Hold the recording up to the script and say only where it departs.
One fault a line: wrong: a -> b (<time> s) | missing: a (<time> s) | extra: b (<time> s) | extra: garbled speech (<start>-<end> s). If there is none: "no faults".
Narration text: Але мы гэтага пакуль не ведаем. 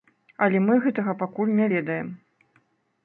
no faults